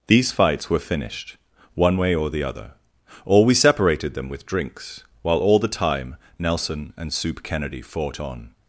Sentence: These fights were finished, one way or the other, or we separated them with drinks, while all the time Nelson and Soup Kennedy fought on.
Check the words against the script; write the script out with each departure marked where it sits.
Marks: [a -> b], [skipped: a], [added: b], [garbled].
These fights were finished, one way or the other, or we separated them with drinks, while all the time Nelson and Soup Kennedy fought on.